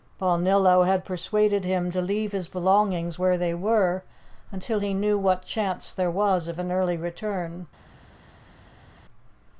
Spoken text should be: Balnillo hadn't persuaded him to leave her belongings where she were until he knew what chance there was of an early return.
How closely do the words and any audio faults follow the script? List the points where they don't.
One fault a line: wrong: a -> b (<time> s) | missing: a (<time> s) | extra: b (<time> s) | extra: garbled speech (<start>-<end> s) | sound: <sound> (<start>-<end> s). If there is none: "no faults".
wrong: hadn't -> had (0.8 s)
wrong: her -> his (2.3 s)
wrong: she -> they (3.4 s)